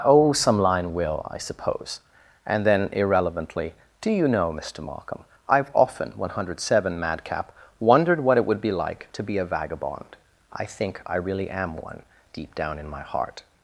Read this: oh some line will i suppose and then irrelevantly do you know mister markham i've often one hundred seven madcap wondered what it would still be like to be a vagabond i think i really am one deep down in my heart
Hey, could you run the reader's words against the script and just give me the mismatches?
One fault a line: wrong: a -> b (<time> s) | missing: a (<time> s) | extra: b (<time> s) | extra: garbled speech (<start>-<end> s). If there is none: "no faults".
missing: still (8.6 s)